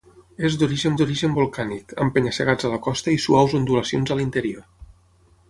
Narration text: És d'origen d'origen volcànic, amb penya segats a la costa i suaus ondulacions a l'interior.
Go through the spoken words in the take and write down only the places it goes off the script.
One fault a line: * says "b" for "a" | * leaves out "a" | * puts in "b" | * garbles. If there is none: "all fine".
all fine